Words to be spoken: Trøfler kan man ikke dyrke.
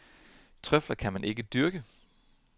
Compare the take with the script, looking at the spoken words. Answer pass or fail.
pass